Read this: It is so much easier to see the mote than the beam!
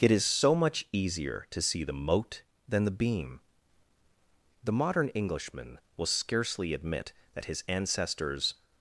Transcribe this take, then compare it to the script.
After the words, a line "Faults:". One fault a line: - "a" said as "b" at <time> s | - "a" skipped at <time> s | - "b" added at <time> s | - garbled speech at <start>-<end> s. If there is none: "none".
It is so much easier to see the mote than the beam! The modern Englishman will scarcely admit that his ancestors
Faults:
- "The modern Englishman will scarcely admit that his ancestors" added at 4.6 s